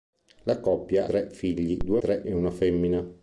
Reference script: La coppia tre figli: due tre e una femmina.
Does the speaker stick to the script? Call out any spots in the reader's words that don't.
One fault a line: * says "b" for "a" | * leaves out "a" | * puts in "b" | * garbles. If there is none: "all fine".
all fine